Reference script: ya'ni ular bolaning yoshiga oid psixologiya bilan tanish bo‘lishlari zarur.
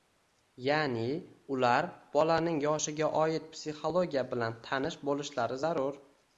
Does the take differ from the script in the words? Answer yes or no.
no